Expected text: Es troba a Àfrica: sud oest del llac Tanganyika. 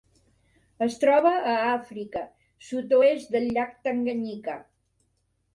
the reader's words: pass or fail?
pass